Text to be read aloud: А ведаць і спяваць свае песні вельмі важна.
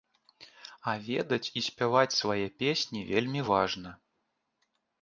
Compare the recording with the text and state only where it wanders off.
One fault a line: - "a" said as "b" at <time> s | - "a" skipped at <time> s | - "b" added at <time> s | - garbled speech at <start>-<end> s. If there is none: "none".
none